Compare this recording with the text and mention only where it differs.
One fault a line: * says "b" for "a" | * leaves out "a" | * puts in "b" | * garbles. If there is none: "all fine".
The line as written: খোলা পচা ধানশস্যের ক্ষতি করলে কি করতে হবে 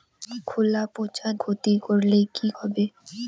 * leaves out "ধানশস্যের"
* leaves out "করতে"